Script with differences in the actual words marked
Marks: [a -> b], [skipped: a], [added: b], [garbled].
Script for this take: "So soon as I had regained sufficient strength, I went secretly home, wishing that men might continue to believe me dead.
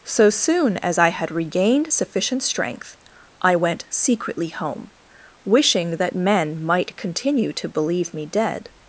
"So soon as I had regained sufficient strength, I went secretly home, wishing that men might continue to believe me dead.